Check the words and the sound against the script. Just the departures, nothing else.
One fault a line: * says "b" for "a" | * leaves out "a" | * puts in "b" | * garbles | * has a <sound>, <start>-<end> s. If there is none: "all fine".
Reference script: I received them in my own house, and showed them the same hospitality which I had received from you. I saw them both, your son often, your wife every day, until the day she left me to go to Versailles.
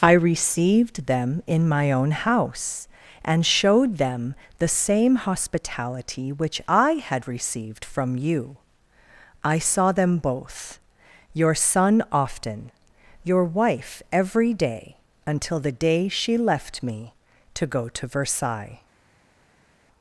all fine